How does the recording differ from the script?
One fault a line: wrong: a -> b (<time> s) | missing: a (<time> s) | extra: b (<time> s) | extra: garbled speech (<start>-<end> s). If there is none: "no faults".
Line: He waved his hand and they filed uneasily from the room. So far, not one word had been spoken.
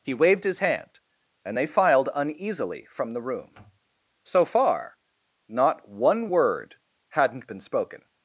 wrong: had -> hadn't (7.1 s)